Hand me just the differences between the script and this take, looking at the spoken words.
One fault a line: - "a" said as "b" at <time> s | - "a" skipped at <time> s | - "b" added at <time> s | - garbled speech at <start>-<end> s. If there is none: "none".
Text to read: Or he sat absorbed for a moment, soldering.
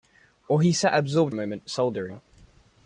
- "for" skipped at 1.4 s